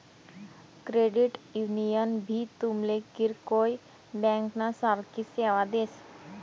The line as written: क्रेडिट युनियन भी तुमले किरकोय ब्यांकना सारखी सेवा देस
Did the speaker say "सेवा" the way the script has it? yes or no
yes